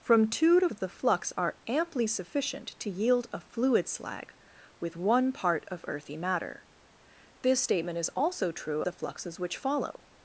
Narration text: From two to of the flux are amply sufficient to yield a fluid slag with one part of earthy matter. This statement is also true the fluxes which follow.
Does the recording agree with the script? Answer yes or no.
yes